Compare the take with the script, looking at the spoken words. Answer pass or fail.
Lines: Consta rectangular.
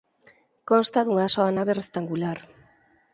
fail